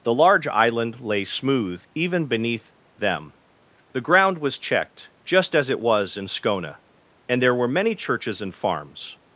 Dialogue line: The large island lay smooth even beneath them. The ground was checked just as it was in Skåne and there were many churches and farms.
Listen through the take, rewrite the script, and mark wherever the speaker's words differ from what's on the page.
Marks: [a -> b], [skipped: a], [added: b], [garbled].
The large island lay smooth even beneath them. The ground was checked just as it was in Skåne and there were many churches and farms.